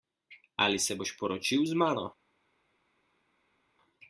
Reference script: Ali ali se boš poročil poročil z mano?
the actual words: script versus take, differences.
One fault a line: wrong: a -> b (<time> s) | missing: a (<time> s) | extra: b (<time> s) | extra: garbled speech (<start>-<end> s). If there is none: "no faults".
missing: ali (0.8 s)
missing: poročil (1.6 s)